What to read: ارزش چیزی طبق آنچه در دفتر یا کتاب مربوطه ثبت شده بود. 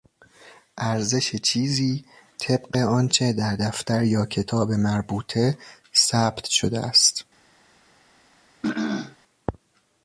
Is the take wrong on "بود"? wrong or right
wrong